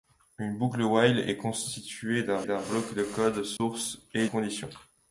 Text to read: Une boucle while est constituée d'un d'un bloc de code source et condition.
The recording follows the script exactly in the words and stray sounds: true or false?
false